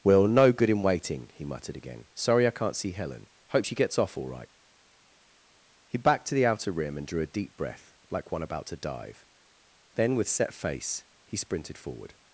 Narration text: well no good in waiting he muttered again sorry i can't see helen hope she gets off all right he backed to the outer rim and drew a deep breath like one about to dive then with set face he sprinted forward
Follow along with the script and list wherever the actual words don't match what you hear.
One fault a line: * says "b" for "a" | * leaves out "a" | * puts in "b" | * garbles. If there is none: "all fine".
all fine